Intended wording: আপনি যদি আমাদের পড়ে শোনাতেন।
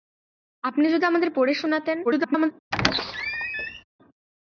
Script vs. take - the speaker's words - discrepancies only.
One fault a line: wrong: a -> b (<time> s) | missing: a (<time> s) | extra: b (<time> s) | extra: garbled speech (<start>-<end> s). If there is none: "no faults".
extra: garbled speech (2.0-2.5 s)